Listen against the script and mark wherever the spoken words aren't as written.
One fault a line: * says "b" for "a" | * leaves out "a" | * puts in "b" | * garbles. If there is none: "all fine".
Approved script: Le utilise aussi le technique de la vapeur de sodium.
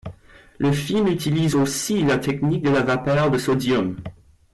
* puts in "film"
* says "la" for "le"